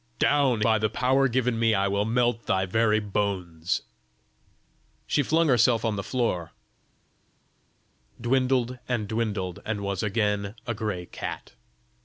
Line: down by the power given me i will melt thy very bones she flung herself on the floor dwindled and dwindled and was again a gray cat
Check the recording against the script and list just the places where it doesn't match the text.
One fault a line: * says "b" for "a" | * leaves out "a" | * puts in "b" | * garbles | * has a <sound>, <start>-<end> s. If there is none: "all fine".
all fine